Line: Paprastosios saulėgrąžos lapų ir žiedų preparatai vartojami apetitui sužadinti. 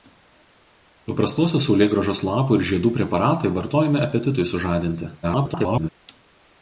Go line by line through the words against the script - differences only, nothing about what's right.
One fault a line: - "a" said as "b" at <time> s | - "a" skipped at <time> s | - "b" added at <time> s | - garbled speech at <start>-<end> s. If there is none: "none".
- garbled speech at 5.2-5.9 s